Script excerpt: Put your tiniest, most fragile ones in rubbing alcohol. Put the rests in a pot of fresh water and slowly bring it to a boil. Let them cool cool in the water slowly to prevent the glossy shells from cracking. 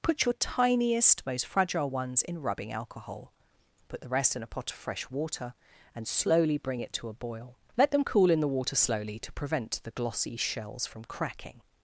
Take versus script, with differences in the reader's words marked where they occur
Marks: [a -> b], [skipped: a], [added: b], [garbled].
Put your tiniest, most fragile ones in rubbing alcohol. Put the [rests -> rest] in a pot of fresh water and slowly bring it to a boil. Let them cool [skipped: cool] in the water slowly to prevent the glossy shells from cracking.